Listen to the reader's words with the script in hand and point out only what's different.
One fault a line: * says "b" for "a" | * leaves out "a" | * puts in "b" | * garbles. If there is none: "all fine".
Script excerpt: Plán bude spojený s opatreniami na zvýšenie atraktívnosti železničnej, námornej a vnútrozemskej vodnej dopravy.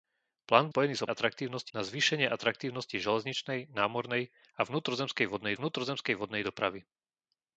* leaves out "bude"
* says "atraktívnosti" for "opatreniami"
* puts in "vnútrozemskej vodnej"